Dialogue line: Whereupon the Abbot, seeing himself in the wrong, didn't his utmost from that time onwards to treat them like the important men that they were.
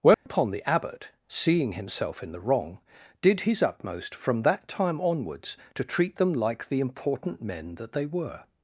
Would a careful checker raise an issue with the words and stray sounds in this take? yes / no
yes